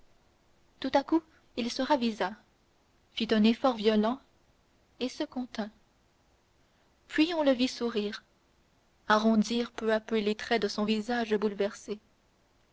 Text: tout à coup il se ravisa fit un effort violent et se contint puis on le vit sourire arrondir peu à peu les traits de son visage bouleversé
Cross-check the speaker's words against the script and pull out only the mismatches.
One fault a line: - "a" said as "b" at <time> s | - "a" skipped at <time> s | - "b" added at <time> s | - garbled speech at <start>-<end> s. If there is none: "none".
none